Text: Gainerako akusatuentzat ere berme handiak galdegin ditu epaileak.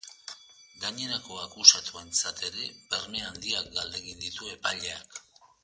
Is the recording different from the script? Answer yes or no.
no